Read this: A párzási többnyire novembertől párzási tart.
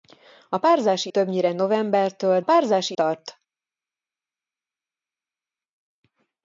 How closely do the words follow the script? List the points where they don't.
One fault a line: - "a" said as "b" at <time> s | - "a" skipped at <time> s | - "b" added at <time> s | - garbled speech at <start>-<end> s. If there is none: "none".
none